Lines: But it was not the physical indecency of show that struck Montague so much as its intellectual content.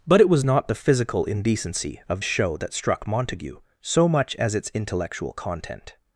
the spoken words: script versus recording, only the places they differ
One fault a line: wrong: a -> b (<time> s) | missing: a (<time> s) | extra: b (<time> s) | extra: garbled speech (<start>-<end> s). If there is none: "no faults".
no faults